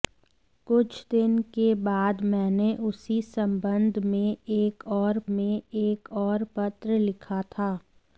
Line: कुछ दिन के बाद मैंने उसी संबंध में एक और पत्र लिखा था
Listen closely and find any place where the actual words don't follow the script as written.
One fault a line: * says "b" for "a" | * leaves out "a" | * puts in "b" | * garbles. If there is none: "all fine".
* puts in "में एक और"